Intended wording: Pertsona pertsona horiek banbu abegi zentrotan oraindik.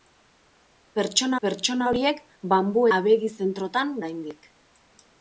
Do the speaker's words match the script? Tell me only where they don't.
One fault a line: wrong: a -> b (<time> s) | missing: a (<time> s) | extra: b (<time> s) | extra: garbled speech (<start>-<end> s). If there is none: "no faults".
no faults